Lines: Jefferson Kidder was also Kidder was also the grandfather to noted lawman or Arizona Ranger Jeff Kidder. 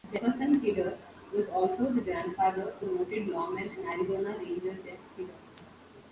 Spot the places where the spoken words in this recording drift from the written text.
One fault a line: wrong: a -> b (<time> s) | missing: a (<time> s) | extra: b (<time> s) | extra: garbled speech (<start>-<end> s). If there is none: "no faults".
missing: Kidder was also (1.9 s)
wrong: or -> and (3.7 s)